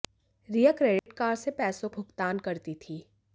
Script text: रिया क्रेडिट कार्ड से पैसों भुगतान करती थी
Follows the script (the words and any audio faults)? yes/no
no